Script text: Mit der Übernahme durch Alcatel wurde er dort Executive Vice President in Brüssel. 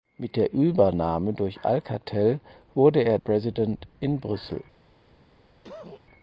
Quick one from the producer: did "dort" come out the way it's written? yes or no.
no